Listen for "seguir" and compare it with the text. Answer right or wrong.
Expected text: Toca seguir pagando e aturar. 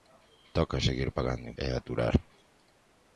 right